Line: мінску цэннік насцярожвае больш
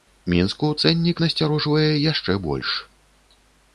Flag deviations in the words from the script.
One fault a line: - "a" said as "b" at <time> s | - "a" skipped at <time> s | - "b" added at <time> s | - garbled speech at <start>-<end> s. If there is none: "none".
- "яшчэ" added at 2.1 s